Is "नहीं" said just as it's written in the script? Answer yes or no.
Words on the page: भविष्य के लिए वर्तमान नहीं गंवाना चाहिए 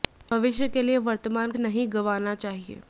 yes